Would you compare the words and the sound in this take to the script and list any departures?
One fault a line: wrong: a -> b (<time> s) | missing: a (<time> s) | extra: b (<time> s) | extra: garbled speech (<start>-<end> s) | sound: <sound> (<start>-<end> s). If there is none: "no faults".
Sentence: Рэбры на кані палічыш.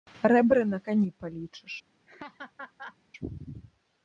sound: laugh (2.1-3.0 s)